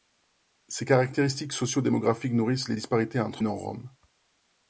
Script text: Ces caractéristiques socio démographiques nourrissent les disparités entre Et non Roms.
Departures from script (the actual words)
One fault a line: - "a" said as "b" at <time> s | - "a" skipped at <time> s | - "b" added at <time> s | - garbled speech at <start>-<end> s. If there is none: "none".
none